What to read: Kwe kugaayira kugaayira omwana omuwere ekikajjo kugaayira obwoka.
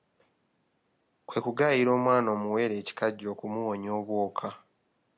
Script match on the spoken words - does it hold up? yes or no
no